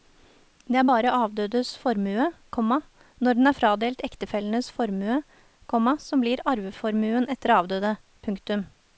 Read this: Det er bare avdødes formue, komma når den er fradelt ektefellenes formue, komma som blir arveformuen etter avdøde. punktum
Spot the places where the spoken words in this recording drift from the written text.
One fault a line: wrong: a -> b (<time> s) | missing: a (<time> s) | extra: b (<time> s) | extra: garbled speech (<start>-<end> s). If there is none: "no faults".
no faults